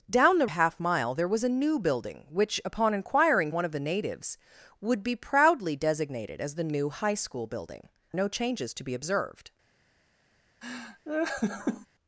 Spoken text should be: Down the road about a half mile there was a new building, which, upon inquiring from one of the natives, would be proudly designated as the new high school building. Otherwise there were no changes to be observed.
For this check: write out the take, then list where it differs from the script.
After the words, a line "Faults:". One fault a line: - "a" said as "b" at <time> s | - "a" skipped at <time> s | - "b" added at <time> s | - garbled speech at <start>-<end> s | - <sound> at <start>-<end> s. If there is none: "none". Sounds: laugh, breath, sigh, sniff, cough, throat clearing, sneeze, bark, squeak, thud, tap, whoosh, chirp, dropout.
Down the a half mile there was a new building, which, upon inquiring one of the natives, would be proudly designated as the new high school building. No changes to be observed.
Faults:
- "road about" skipped at 0.5 s
- "from" skipped at 3.5 s
- "Otherwise there were" skipped at 7.9 s
- laugh at 10.6-11.9 s